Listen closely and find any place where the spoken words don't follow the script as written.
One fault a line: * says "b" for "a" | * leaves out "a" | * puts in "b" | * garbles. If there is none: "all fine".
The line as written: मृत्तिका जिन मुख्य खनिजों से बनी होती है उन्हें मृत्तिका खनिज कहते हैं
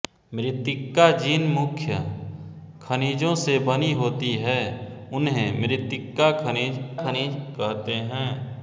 * puts in "खनिज"